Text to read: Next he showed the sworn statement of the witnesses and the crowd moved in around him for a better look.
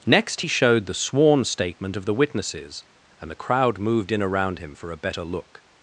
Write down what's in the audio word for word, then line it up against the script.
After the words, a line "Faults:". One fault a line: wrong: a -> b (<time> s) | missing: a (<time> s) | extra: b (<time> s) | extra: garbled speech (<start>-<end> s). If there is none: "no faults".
Next he showed the sworn statement of the witnesses and the crowd moved in around him for a better look.
Faults:
no faults